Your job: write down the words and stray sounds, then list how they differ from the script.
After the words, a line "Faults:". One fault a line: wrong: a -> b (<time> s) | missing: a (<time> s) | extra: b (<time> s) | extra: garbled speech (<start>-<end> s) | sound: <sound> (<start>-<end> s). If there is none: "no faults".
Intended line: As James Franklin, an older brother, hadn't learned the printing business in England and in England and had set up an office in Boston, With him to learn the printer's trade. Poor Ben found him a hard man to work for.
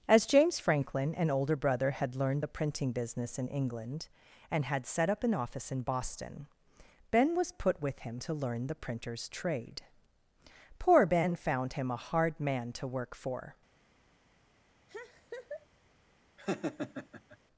As James Franklin, an older brother, had learned the printing business in England and had set up an office in Boston, Ben was put with him to learn the printer's trade. Poor Ben found him a hard man to work for.
Faults:
wrong: hadn't -> had (1.9 s)
missing: in England and (4.6 s)
extra: Ben was put (7.1 s)
sound: laugh (14.9-15.7 s)
sound: laugh (16.4-17.4 s)